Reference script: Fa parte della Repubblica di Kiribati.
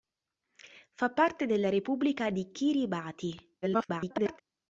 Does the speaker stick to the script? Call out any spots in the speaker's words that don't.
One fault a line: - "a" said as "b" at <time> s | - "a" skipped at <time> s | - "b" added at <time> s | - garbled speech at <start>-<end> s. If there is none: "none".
- garbled speech at 3.6-4.4 s